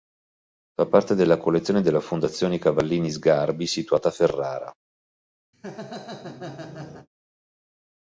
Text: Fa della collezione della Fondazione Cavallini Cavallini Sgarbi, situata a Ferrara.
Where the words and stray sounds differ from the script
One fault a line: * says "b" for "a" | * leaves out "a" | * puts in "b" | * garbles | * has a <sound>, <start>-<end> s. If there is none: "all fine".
* puts in "parte"
* leaves out "Cavallini"
* has a laugh, 5.5-7.1 s